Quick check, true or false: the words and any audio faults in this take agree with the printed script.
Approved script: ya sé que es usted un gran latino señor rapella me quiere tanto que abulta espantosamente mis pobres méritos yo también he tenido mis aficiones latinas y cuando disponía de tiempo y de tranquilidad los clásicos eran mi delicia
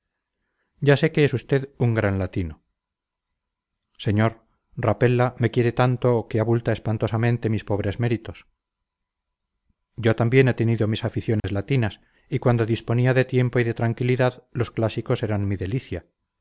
false